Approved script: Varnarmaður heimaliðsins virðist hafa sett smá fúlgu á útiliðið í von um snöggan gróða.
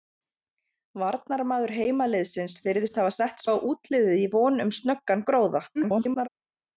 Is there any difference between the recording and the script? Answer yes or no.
yes